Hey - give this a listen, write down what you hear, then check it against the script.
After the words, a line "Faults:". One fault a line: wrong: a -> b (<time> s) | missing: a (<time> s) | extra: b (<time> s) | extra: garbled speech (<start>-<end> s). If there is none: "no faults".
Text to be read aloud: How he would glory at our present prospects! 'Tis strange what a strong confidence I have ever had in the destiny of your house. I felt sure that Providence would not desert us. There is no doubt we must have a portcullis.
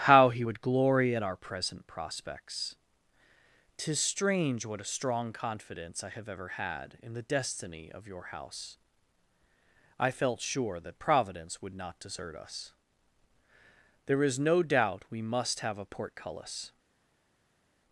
How he would glory at our present prospects! 'Tis strange what a strong confidence I have ever had in the destiny of your house. I felt sure that Providence would not desert us. There is no doubt we must have a portcullis.
Faults:
no faults